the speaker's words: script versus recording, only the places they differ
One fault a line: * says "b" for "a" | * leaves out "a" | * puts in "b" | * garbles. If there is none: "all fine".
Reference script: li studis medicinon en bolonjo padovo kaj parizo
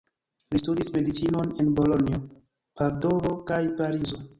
all fine